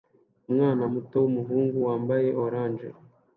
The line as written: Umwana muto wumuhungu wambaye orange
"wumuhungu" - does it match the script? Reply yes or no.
yes